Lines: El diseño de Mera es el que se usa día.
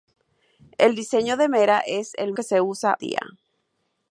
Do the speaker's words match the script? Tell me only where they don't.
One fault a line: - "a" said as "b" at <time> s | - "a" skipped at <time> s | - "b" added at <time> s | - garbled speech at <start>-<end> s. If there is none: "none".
none